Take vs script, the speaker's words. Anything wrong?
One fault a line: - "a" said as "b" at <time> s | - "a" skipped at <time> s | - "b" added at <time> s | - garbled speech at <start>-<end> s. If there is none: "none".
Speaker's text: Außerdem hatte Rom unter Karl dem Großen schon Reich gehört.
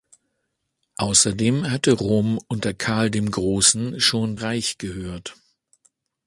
none